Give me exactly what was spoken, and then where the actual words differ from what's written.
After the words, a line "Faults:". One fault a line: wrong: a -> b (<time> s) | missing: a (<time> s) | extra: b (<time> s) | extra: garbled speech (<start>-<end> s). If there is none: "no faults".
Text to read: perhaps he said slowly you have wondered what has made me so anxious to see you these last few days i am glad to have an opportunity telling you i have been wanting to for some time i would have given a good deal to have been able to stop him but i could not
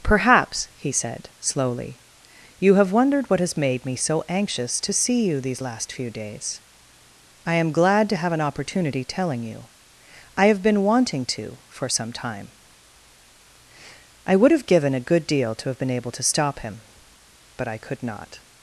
perhaps he said slowly you have wondered what has made me so anxious to see you these last few days i am glad to have an opportunity telling you i have been wanting to for some time i would have given a good deal to have been able to stop him but i could not
Faults:
no faults